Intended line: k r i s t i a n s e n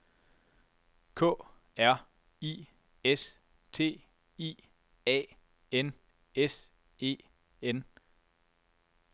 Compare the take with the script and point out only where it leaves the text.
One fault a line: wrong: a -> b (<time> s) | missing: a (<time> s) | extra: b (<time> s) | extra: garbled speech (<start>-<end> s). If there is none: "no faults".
no faults